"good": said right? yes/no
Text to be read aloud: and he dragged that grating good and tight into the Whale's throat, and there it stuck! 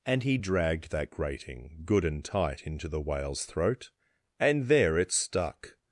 yes